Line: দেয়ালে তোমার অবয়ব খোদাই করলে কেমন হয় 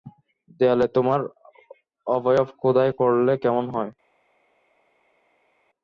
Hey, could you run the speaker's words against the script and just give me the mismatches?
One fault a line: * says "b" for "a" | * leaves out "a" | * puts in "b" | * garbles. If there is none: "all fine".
all fine